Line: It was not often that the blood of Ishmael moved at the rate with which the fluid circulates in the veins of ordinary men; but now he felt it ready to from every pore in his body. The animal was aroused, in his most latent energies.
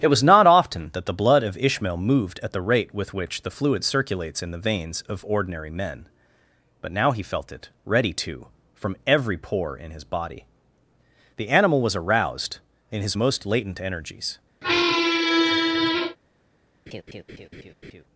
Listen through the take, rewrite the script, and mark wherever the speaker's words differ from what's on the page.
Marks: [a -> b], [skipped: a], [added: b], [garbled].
It was not often that the blood of Ishmael moved at the rate with which the fluid circulates in the veins of ordinary men; but now he felt it ready to from every pore in his body. The animal was aroused, in his most latent energies.